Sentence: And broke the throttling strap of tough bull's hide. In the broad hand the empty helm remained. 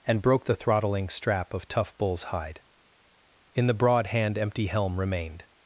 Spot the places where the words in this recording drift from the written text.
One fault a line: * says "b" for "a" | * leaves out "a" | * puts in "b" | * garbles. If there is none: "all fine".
* leaves out "the"